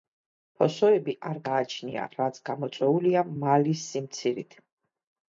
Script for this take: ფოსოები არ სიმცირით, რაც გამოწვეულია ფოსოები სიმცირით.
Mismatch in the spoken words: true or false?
true